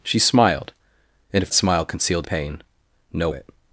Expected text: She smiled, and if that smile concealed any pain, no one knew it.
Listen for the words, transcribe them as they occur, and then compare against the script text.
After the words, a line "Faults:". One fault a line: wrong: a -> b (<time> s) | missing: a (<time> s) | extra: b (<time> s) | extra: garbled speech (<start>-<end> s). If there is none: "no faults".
She smiled, and if smile concealed pain, no it.
Faults:
missing: that (1.5 s)
missing: any (2.3 s)
missing: one knew (3.3 s)